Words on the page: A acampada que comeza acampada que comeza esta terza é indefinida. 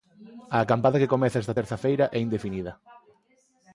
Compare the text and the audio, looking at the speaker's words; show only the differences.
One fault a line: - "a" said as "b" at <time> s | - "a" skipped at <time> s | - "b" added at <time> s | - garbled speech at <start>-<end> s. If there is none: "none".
- "acampada que comeza" skipped at 1.4 s
- "feira" added at 1.8 s